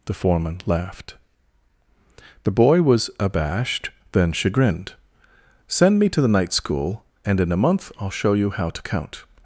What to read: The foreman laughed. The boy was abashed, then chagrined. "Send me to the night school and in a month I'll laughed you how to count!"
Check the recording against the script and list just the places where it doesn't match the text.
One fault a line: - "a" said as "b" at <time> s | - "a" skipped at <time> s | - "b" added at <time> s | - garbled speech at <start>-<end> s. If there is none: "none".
- "laughed" said as "show" at 8.2 s